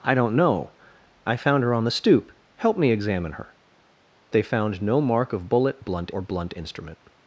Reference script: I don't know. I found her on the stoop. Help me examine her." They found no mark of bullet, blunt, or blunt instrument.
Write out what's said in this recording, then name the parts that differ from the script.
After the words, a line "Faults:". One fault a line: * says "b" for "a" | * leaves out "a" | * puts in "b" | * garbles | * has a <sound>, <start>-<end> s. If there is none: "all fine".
I don't know. I found her on the stoop. Help me examine her." They found no mark of bullet, blunt, or blunt instrument.
Faults:
all fine